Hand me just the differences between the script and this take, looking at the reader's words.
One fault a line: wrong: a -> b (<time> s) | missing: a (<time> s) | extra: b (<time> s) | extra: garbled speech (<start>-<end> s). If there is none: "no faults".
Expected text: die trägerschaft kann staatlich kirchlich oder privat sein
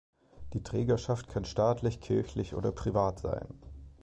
no faults